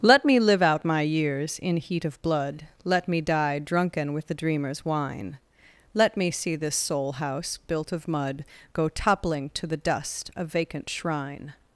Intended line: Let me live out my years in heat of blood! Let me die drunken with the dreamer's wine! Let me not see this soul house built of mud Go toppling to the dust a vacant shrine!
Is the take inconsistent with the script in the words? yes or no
yes